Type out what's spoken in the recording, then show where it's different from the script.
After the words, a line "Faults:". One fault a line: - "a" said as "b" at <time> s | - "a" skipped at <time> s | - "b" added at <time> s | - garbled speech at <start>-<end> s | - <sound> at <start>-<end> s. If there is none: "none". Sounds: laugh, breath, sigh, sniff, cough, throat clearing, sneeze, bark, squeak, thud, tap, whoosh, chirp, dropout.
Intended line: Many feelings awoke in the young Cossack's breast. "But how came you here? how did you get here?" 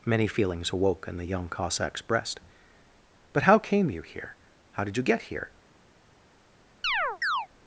Many feelings awoke in the young Cossack's breast. "But how came you here? how did you get here?"
Faults:
- chirp at 6.8-7.5 s